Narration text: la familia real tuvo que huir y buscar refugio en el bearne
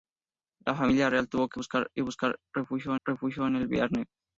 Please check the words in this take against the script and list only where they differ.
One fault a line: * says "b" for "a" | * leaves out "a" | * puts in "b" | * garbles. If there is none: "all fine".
* says "buscar" for "huir"
* puts in "refugio"